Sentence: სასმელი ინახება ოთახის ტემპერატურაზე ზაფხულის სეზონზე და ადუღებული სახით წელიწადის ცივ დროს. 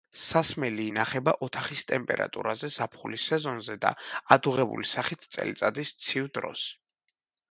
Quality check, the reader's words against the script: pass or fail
pass